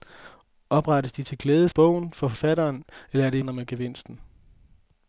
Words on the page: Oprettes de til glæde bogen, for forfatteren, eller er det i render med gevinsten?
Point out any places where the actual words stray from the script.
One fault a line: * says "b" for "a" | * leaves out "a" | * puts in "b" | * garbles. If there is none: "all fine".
all fine